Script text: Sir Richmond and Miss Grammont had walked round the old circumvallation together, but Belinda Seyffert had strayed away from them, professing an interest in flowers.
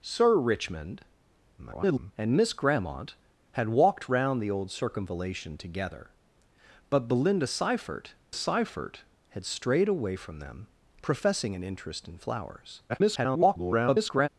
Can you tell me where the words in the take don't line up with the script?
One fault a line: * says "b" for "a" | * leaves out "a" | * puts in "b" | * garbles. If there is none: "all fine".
* garbles
* puts in "Seyffert"
* garbles